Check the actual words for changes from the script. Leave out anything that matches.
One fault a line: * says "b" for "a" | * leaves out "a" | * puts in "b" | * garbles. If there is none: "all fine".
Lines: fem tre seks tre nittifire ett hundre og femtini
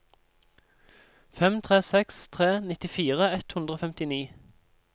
all fine